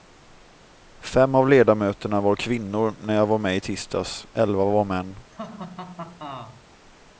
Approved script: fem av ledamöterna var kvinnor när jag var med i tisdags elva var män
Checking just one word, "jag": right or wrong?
right